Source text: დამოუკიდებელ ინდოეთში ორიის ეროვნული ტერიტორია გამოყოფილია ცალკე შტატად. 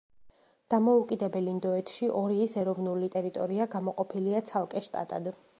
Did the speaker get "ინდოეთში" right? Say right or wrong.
right